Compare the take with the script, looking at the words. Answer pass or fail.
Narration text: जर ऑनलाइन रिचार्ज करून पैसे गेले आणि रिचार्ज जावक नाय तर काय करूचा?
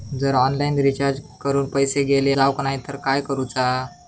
fail